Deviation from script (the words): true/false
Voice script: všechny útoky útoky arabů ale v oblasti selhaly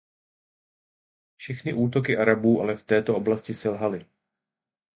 true